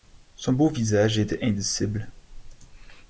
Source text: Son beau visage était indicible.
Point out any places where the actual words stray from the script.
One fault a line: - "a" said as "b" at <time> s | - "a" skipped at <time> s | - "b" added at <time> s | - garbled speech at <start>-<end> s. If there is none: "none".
none